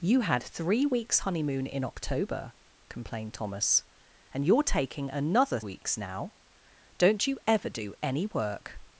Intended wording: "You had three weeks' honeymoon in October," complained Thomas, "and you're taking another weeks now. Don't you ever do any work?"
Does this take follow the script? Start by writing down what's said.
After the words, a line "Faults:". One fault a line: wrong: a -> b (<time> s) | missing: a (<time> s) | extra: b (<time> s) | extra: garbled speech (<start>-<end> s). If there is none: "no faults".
"You had three weeks' honeymoon in October," complained Thomas, "and you're taking another weeks now. Don't you ever do any work?"
Faults:
no faults